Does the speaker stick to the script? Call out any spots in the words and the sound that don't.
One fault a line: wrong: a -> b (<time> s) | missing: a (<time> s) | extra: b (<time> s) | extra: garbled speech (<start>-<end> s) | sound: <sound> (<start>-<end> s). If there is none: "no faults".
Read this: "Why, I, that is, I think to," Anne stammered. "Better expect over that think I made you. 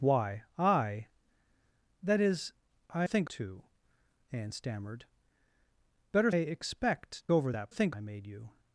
no faults